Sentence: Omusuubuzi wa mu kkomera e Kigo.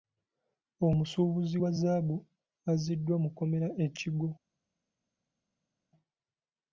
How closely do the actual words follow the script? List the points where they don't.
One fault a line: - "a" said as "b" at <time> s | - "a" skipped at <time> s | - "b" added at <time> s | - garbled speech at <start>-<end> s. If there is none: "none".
- "zzaabu azziddwa" added at 1.7 s